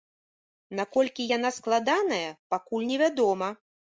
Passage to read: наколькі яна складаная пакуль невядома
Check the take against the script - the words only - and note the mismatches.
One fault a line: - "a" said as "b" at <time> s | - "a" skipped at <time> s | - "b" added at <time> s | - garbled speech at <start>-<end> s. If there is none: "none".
none